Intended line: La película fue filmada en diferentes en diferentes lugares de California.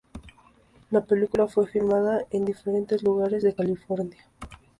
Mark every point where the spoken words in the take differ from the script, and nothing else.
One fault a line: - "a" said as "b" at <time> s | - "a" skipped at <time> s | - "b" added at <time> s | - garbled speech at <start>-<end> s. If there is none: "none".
- "en diferentes" skipped at 3.0 s